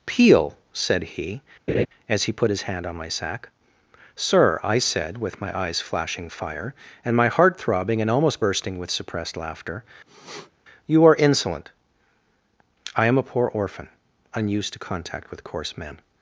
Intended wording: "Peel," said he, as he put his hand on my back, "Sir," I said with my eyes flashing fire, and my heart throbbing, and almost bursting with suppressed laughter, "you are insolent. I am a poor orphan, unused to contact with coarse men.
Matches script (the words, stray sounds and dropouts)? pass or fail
fail